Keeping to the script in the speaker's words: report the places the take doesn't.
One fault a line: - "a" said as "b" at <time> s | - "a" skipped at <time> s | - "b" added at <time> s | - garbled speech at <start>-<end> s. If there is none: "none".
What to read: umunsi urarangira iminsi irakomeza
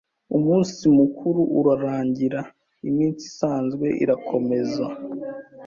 - "mukuru" added at 1.0 s
- "isanzwe" added at 3.3 s